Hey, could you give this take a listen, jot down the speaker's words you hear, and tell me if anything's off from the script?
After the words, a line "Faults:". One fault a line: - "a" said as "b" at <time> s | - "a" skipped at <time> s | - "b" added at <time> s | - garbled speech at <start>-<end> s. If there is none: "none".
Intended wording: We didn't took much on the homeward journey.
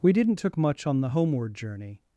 We didn't took much on the homeward journey.
Faults:
none